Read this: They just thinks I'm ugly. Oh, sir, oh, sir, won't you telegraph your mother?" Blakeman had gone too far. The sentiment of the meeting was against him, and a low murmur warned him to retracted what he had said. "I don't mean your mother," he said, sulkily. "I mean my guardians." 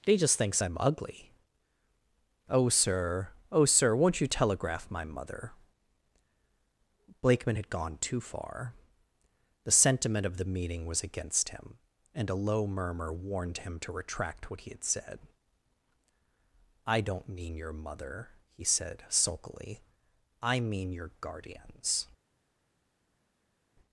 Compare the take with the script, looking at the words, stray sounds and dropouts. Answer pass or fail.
fail